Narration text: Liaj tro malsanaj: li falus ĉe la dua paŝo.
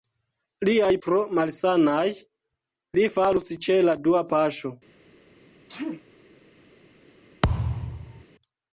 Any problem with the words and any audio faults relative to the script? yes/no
yes